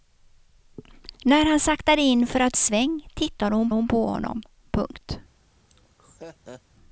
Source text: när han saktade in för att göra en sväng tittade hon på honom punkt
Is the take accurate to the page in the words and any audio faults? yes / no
no